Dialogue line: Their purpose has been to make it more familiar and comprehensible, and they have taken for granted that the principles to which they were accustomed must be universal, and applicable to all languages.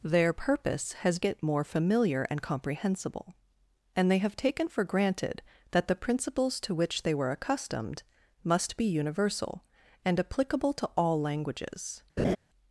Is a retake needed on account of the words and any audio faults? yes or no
yes